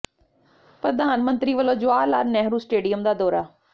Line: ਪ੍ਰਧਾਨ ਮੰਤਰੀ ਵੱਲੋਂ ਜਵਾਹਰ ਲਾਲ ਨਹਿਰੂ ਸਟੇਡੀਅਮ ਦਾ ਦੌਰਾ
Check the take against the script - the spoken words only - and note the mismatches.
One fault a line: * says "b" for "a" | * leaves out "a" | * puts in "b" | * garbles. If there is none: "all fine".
all fine